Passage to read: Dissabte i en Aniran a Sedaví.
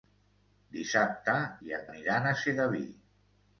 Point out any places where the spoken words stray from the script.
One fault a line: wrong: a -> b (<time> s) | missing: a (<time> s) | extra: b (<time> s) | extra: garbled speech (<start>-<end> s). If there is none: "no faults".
no faults